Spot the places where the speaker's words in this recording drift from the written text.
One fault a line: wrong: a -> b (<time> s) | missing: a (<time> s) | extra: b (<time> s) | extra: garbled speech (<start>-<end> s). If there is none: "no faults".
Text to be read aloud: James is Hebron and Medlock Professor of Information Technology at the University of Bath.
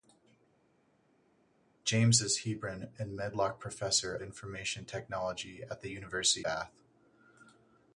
missing: of (4.2 s)
missing: of (6.5 s)